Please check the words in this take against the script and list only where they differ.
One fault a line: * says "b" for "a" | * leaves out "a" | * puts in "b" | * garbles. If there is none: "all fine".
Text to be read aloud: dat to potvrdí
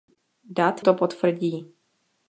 all fine